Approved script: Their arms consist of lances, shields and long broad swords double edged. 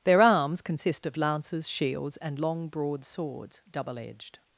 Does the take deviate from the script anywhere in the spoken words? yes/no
no